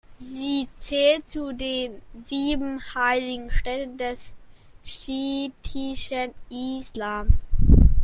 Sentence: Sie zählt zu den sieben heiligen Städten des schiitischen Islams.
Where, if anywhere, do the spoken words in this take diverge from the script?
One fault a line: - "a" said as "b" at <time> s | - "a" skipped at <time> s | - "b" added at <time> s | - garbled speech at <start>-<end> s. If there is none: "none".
none